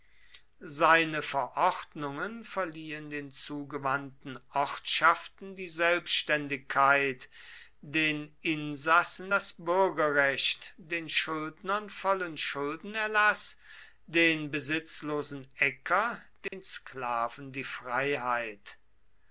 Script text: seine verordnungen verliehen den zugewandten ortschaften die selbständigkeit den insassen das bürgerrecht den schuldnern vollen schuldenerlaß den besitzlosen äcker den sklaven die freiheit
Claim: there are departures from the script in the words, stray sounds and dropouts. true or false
true